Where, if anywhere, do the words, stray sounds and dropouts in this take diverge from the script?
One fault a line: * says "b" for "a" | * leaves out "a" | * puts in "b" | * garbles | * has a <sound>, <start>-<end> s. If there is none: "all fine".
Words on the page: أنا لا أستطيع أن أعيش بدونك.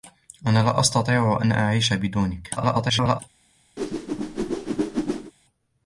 * garbles
* has a whoosh, 3.8-5.3 s